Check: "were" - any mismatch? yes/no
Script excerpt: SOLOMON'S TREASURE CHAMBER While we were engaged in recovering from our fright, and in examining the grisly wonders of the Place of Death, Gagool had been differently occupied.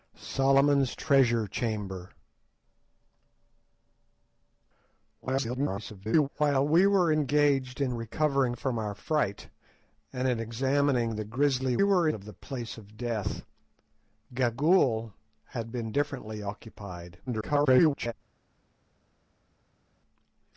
no